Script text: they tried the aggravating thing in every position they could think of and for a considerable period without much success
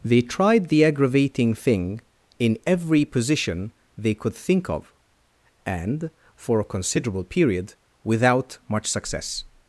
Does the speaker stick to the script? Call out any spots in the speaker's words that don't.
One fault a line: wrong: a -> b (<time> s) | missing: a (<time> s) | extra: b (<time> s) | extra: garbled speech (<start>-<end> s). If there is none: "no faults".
no faults